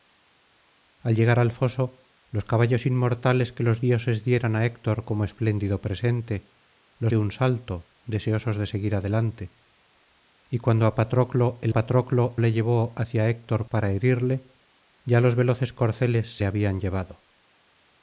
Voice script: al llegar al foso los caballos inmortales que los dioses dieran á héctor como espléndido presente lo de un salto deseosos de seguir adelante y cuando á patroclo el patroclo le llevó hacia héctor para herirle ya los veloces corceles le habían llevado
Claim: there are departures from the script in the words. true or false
false